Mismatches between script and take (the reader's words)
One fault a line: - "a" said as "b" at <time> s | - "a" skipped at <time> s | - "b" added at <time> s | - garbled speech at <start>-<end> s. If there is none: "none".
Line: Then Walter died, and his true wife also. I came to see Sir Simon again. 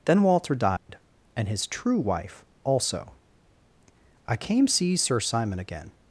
- "to" skipped at 4.7 s